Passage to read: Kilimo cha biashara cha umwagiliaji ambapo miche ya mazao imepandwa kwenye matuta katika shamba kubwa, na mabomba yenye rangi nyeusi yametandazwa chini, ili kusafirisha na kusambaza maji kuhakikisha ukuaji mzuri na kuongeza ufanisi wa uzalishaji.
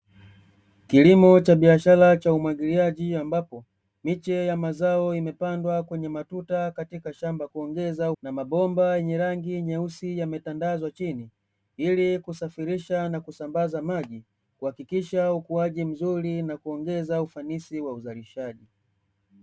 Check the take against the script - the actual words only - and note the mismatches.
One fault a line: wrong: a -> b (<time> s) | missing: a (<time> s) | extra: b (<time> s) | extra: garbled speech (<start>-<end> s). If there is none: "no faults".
wrong: kubwa -> kuongeza (7.5 s)